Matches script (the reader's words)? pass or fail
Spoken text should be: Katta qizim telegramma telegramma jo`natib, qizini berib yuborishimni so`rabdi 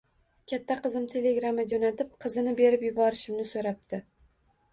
fail